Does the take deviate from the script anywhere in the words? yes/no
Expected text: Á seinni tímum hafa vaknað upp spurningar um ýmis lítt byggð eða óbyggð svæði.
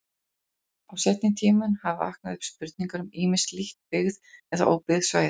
no